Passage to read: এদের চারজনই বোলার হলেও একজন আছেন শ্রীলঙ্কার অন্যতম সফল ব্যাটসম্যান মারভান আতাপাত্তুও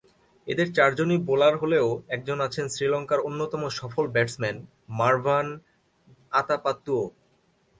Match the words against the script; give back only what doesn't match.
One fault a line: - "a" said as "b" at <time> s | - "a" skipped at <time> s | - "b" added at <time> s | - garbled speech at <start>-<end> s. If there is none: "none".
none